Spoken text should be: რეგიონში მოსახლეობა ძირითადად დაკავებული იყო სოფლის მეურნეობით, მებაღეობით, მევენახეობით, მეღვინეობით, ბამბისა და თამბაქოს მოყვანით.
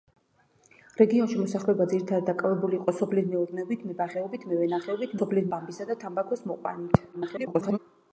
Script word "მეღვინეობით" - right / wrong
wrong